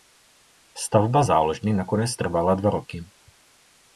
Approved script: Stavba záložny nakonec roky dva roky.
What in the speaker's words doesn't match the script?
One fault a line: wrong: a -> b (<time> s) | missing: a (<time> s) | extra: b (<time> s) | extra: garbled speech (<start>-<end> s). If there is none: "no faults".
wrong: roky -> trvala (2.2 s)